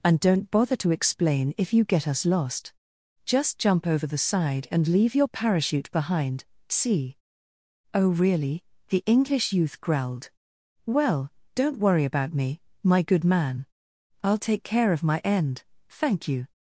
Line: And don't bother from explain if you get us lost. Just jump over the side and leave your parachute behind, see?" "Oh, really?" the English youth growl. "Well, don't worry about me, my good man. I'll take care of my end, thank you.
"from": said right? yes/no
no